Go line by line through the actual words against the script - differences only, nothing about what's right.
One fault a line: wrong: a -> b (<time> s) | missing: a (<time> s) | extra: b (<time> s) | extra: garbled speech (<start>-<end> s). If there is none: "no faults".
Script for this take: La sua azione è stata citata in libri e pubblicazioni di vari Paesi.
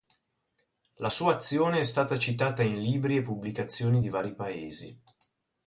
no faults